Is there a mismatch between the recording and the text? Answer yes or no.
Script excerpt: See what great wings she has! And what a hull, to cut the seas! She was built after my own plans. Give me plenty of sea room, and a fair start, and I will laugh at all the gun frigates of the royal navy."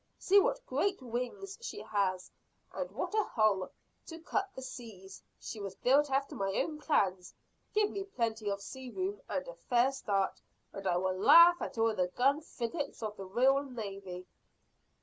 no